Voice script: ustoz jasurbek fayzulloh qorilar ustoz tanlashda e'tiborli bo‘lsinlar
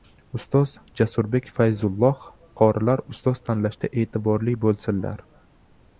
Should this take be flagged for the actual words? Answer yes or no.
no